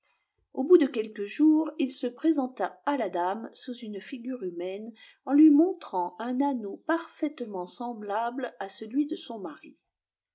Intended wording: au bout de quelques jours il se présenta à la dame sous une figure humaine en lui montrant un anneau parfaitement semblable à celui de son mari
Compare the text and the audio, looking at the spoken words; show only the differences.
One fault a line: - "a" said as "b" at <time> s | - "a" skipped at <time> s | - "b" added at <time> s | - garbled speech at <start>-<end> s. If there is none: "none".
none